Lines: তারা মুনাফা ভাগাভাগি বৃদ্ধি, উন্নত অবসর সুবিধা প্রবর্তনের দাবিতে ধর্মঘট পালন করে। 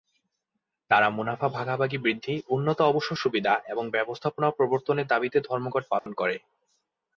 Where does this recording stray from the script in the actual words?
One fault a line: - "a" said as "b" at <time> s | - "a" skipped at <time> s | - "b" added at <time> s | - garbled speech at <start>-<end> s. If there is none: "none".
- "এবং ব্যবস্থাপনা" added at 3.7 s